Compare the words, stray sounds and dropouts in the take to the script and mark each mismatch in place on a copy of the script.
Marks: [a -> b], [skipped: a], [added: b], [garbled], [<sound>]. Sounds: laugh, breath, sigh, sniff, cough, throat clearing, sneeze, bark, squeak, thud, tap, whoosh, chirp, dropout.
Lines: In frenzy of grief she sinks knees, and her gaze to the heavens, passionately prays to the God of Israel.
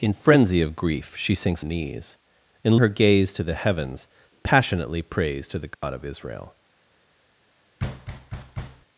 In frenzy of grief she sinks knees, and her gaze to the heavens, passionately prays to the God [dropout] of Israel. [thud]